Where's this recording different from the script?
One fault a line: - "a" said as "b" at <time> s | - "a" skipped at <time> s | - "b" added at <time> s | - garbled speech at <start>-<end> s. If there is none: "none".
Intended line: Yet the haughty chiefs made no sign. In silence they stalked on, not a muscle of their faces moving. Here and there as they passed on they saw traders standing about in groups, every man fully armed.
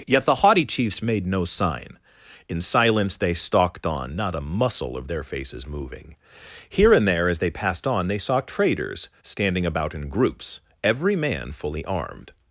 none